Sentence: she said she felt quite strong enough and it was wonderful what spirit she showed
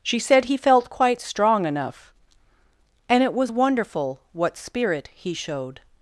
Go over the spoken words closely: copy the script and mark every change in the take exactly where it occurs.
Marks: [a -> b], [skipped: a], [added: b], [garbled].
she said [she -> he] felt quite strong enough and it was wonderful what spirit [she -> he] showed